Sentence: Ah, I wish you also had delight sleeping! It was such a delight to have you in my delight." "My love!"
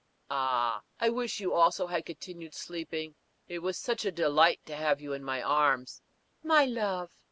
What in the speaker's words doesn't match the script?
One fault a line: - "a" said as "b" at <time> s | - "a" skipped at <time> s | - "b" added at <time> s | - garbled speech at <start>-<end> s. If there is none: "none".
- "delight" said as "continued" at 2.1 s
- "delight" said as "arms" at 5.4 s